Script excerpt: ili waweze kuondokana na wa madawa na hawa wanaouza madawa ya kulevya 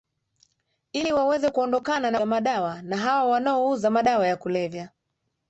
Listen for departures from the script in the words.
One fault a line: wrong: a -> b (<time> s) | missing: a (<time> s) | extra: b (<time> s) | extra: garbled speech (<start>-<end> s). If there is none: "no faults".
no faults